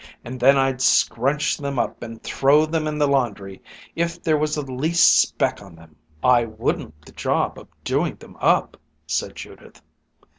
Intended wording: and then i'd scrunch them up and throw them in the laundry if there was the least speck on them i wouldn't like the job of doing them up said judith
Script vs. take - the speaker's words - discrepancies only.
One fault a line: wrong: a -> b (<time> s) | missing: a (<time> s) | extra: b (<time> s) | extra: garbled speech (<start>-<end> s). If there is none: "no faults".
missing: like (7.1 s)